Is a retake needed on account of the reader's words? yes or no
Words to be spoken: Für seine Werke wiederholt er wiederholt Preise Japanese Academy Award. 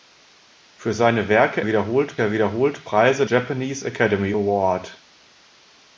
no